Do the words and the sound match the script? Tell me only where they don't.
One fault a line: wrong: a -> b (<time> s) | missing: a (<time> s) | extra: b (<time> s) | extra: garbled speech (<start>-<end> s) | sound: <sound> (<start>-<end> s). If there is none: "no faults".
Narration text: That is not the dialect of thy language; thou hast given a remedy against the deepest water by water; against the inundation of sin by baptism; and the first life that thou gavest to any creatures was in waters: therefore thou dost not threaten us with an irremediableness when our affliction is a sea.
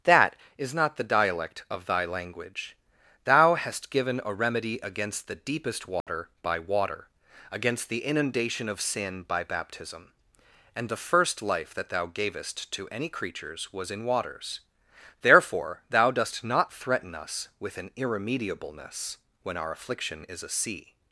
sound: dropout (6.0-6.1 s)